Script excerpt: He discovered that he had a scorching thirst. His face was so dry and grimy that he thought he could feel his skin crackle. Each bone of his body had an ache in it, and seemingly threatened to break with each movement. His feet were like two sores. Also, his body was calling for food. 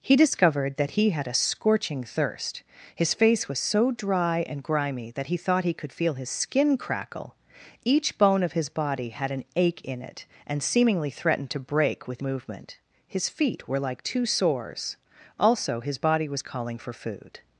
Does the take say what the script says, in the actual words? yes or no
no